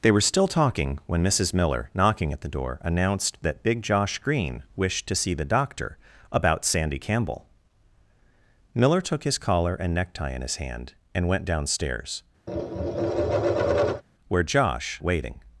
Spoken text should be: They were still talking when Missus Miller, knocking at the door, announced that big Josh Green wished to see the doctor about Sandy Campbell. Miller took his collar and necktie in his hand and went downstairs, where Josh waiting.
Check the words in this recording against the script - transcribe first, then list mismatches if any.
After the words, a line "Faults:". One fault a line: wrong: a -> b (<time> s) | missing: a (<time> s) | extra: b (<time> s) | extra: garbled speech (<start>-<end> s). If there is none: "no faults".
They were still talking when Missus Miller, knocking at the door, announced that big Josh Green wished to see the doctor about Sandy Campbell. Miller took his collar and necktie in his hand and went downstairs, where Josh waiting.
Faults:
no faults